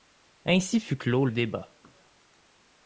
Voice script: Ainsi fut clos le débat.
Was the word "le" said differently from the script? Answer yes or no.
yes